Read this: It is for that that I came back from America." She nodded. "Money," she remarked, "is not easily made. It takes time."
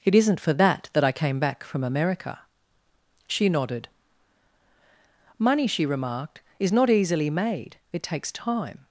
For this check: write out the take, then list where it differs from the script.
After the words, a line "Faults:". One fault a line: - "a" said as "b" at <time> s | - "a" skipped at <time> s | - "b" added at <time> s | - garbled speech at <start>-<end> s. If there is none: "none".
It isn't for that that I came back from America." She nodded. "Money," she remarked, "is not easily made. It takes time."
Faults:
- "is" said as "isn't" at 0.1 s